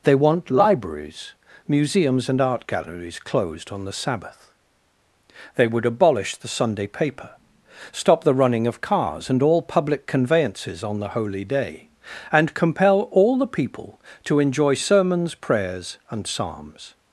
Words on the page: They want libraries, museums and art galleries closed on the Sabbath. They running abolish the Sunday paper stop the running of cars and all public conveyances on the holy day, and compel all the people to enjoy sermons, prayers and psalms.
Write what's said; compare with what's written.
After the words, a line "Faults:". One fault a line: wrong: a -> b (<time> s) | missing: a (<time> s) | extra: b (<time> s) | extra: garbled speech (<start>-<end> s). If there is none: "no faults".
They want libraries, museums and art galleries closed on the Sabbath. They would abolish the Sunday paper stop the running of cars and all public conveyances on the holy day, and compel all the people to enjoy sermons, prayers and psalms.
Faults:
wrong: running -> would (5.7 s)